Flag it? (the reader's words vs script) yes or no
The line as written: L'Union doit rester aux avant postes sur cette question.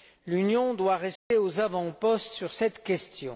no